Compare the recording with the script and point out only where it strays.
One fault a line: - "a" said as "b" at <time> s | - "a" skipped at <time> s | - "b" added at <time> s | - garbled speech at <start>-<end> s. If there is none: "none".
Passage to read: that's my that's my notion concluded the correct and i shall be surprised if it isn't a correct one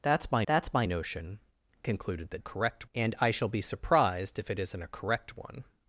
none